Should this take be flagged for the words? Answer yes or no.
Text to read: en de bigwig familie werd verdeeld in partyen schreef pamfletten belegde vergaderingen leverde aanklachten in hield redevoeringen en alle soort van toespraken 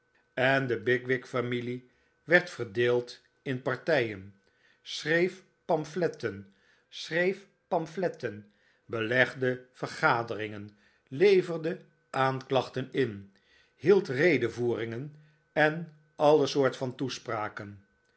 yes